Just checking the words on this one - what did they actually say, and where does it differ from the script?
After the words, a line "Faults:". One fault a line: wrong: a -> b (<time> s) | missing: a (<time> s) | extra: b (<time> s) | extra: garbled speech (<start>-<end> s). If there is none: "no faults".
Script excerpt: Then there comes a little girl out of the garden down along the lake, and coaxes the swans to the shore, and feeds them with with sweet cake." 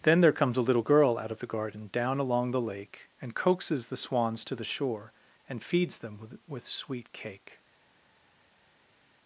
Then there comes a little girl out of the garden down along the lake, and coaxes the swans to the shore, and feeds them with with sweet cake."
Faults:
no faults